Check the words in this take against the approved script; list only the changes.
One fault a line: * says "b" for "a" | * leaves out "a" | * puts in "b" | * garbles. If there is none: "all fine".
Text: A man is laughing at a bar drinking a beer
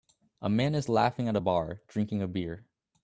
all fine